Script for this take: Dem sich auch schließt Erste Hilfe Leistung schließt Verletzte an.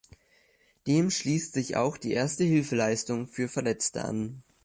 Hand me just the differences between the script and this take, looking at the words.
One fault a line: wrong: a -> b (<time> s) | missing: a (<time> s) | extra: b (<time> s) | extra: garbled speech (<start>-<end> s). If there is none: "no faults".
extra: schließt (1.1 s)
wrong: schließt -> die (1.9 s)
wrong: schließt -> für (3.3 s)